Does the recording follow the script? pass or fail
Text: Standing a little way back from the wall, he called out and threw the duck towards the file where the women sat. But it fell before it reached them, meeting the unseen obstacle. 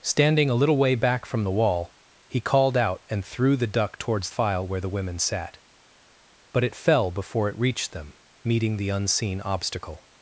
fail